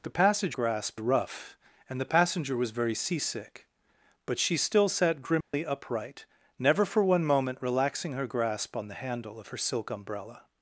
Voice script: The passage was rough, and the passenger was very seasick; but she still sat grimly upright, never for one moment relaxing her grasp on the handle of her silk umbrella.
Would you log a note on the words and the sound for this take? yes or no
yes